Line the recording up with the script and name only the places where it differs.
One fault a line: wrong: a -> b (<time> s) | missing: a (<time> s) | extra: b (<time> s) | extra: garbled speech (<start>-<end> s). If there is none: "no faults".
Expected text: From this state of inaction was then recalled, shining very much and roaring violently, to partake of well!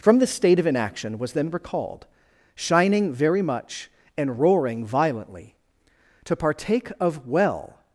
no faults